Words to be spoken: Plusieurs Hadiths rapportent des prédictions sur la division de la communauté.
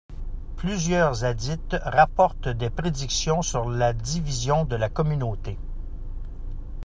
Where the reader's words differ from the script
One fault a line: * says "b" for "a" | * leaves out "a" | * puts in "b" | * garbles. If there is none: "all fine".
all fine